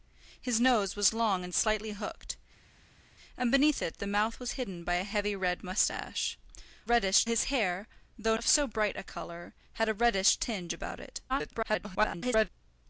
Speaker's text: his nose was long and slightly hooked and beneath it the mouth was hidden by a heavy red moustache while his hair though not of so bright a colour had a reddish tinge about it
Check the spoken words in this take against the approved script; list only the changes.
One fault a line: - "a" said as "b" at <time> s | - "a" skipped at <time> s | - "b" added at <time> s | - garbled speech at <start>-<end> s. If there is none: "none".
- "while" said as "reddish" at 6.8 s
- "not" skipped at 8.4 s
- garbled speech at 11.3-12.5 s